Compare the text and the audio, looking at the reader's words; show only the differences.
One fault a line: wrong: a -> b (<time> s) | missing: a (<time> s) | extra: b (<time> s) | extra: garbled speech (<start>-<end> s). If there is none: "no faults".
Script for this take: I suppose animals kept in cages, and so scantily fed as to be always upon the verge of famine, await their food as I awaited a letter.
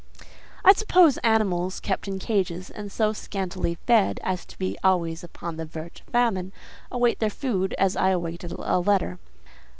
no faults